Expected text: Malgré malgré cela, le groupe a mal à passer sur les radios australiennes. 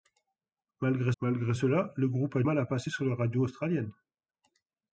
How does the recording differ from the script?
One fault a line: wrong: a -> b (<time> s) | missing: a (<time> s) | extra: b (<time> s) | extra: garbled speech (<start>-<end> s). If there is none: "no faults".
no faults